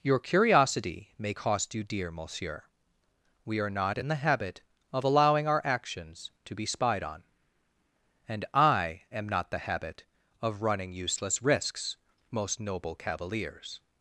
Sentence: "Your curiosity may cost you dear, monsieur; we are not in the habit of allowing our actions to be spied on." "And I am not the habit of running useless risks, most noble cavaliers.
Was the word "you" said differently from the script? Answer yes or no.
no